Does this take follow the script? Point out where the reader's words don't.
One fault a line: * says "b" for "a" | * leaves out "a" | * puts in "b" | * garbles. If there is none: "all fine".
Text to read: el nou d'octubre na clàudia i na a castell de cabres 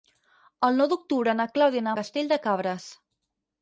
all fine